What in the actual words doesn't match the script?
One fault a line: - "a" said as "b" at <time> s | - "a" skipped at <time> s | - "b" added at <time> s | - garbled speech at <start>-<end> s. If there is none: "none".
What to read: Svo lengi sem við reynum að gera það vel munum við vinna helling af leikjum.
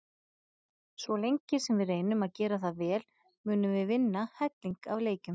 none